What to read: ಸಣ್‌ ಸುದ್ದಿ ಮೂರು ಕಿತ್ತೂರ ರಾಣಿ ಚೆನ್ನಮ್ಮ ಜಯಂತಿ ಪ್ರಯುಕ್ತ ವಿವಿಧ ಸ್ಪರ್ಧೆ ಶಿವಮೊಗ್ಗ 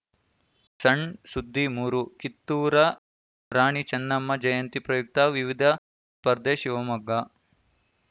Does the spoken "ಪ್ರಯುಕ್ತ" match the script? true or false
true